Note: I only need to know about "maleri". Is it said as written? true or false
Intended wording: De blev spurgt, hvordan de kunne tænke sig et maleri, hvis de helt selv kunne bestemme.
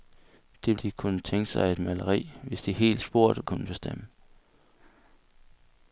true